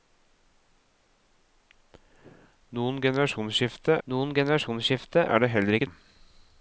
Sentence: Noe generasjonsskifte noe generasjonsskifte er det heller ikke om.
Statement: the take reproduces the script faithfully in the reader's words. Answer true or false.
true